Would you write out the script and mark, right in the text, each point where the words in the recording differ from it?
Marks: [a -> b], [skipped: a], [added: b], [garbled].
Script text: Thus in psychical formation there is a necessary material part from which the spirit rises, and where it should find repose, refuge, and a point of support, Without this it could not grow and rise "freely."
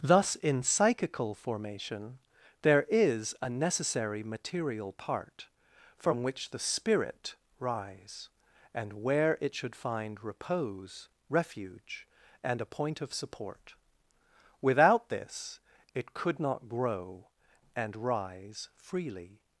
Thus in psychical formation there is a necessary material part from which the spirit [rises, -> rise] and where it should find repose, refuge, and a point of support, Without this it could not grow and rise "freely."